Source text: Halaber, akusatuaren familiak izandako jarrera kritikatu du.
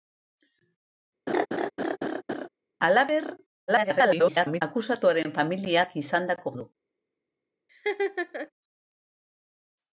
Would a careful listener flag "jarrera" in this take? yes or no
yes